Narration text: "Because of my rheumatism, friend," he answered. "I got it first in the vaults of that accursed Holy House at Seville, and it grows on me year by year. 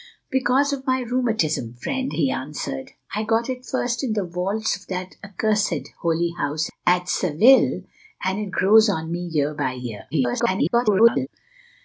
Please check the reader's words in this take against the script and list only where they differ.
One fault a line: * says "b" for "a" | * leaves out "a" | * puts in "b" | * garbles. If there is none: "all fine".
* garbles